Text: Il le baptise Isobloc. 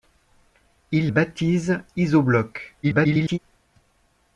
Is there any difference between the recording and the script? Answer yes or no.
yes